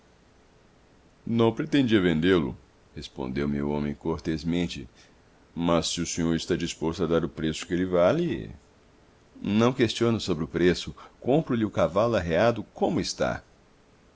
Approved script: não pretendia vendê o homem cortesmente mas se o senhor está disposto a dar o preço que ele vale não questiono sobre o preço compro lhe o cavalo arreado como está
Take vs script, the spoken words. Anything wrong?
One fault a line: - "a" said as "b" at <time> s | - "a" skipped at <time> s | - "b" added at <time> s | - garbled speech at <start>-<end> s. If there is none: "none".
- "lo respondeu me" added at 2.4 s